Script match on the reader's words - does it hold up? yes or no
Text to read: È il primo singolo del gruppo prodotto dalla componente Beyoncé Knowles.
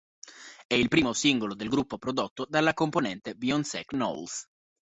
yes